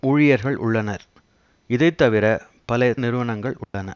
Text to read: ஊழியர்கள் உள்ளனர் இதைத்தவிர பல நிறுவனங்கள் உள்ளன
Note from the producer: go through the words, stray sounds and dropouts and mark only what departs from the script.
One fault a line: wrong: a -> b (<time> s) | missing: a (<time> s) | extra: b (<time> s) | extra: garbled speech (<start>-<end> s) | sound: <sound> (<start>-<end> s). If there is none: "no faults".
sound: dropout (3.6-3.7 s)